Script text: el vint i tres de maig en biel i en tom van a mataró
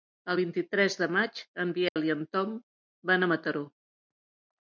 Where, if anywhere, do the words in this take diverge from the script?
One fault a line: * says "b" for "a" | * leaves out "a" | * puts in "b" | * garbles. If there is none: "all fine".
all fine